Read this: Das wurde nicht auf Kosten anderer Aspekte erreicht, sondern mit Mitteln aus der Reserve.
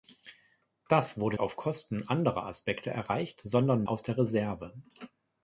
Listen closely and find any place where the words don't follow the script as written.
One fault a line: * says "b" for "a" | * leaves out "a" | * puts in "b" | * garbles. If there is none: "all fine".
* leaves out "nicht"
* leaves out "mit Mitteln"